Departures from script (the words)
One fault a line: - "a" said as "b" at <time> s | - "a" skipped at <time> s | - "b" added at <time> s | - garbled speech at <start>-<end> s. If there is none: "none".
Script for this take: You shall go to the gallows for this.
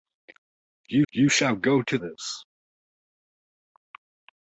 - "you" added at 1.1 s
- "the gallows for" skipped at 2.0 s